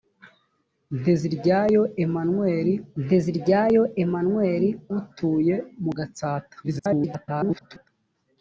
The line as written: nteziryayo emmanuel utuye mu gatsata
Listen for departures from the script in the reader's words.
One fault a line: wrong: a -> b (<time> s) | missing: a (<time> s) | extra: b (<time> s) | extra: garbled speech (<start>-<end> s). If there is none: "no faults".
extra: nteziryayo emmanuel (3.0 s)
extra: garbled speech (6.6-7.9 s)